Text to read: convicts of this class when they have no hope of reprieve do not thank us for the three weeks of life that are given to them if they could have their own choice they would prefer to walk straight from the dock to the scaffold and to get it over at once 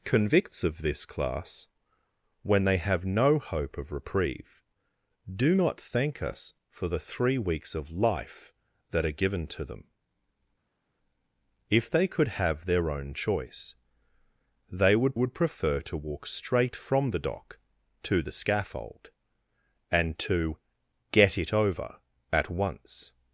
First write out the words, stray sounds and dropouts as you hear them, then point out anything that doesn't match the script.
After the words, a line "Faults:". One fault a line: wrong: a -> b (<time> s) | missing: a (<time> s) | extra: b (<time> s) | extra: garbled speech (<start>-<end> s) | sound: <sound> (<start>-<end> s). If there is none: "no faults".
convicts of this class when they have no hope of reprieve do not thank us for the three weeks of life that are given to them if they could have their own choice they would would prefer to walk straight from the dock to the scaffold and to get it over at once
Faults:
extra: would (15.1 s)